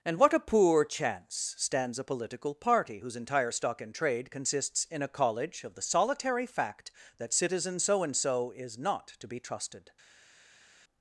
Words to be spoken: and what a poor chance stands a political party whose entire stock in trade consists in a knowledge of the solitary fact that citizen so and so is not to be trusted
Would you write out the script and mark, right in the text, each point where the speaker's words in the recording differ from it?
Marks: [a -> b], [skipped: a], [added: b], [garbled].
and what a poor chance stands a political party whose entire stock in trade consists in a [knowledge -> college] of the solitary fact that citizen so and so is not to be trusted